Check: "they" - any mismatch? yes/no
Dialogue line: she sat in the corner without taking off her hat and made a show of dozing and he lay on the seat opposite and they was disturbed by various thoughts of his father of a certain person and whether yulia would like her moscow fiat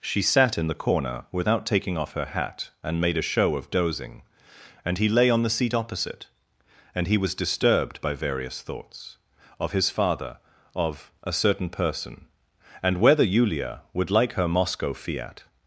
yes